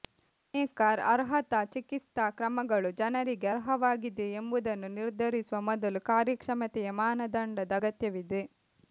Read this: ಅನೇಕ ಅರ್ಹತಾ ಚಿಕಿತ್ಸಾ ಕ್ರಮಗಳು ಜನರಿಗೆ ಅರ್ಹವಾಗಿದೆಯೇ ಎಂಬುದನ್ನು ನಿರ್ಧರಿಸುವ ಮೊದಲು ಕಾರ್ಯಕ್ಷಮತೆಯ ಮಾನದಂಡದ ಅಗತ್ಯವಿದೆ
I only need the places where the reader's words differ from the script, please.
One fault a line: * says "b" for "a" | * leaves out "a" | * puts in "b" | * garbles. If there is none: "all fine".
all fine